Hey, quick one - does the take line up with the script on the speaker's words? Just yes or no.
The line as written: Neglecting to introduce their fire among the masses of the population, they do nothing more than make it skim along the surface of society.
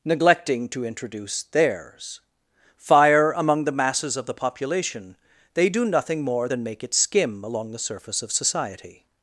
no